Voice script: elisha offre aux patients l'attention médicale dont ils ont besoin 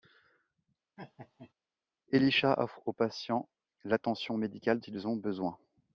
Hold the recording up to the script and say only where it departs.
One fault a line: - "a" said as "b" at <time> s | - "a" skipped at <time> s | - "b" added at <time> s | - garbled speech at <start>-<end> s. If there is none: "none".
- "dont" skipped at 4.8 s